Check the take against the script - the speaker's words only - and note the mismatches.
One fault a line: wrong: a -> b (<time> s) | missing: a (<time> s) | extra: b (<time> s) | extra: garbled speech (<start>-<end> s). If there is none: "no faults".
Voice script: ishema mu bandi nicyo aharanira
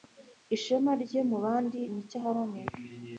extra: rye (1.0 s)